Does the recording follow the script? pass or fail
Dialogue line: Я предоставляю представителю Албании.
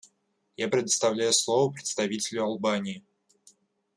fail